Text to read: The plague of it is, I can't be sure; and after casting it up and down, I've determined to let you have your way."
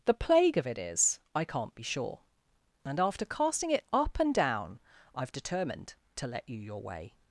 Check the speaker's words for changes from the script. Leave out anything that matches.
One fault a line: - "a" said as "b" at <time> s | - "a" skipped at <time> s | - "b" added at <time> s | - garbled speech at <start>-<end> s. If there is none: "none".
- "have" skipped at 6.6 s